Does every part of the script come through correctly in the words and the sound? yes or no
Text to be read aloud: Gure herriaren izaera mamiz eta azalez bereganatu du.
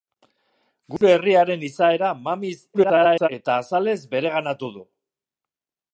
no